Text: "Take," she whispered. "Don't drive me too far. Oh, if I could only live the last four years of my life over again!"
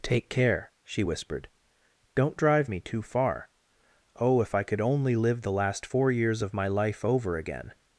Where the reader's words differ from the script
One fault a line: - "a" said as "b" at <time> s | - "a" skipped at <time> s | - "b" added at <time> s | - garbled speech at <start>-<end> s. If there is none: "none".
- "care" added at 0.3 s